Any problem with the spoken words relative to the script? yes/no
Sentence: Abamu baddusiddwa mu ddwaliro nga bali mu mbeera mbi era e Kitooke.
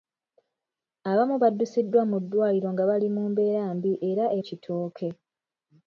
no